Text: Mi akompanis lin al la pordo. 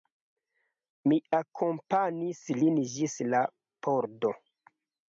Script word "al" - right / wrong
wrong